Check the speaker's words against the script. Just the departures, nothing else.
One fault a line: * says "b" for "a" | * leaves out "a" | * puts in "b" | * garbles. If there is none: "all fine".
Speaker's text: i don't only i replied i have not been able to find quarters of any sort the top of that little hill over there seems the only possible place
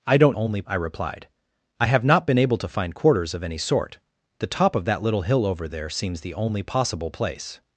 all fine